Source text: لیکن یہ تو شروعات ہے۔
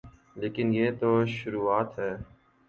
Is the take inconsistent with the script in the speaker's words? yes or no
no